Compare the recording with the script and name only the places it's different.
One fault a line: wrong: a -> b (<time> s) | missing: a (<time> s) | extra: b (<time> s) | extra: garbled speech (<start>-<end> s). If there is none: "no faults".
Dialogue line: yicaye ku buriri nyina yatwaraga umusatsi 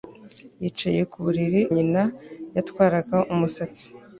no faults